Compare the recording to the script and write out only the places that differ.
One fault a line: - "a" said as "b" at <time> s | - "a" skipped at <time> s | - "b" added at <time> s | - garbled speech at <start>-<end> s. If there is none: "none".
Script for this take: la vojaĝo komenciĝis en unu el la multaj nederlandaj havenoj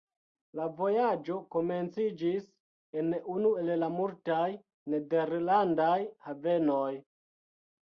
none